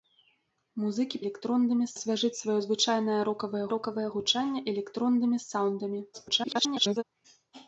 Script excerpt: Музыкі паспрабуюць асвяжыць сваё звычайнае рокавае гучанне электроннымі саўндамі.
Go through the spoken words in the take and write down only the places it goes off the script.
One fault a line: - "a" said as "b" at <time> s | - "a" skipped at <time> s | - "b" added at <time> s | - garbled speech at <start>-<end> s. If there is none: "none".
- "паспрабуюць" said as "электроннымі" at 1.2 s
- "рокавае" added at 3.8 s
- garbled speech at 6.1-7.0 s